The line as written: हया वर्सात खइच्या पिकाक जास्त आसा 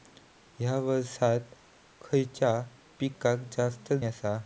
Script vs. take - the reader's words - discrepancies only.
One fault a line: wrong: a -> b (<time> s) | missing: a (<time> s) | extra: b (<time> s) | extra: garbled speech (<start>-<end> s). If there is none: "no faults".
no faults